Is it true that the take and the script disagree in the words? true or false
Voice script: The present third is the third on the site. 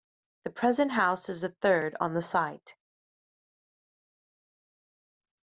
true